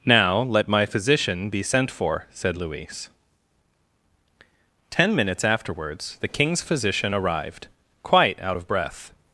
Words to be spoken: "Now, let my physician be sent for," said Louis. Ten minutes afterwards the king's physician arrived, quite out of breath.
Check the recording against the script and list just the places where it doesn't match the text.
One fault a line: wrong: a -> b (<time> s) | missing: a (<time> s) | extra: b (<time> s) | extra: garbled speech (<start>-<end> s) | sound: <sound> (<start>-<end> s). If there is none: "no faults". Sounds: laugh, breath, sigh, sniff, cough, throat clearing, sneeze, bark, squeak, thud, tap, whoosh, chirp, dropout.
no faults